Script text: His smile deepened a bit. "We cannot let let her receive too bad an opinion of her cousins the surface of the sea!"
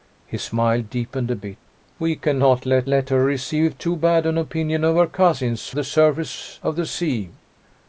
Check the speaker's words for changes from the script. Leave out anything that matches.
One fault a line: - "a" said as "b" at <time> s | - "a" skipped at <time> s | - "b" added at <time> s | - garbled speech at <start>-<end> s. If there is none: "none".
none